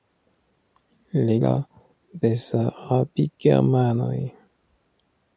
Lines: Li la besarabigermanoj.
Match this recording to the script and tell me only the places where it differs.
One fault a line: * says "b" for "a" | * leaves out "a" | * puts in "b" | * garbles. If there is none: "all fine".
all fine